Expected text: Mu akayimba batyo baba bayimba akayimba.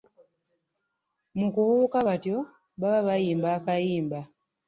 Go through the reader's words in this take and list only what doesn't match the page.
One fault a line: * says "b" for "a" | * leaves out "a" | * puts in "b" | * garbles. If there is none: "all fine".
* says "kubuuka" for "akayimba"